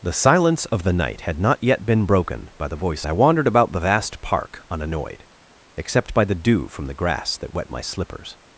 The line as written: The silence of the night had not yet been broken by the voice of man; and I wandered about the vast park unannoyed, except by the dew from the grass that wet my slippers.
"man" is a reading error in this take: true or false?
true